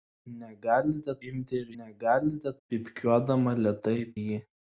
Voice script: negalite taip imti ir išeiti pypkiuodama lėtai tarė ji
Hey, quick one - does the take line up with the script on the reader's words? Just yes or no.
no